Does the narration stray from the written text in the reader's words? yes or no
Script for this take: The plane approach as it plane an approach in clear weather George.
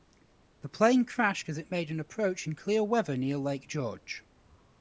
yes